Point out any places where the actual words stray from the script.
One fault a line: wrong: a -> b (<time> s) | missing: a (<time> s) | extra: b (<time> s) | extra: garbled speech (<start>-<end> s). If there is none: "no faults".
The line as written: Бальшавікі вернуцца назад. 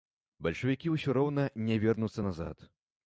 extra: ўсё роўна не (0.9 s)